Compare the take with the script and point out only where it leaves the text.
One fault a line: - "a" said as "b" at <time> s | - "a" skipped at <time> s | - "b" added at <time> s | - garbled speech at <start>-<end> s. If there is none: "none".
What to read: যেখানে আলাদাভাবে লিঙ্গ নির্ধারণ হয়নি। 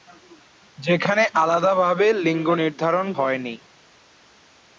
none